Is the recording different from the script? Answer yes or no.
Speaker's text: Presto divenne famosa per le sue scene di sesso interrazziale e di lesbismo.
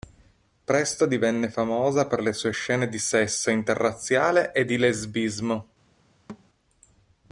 no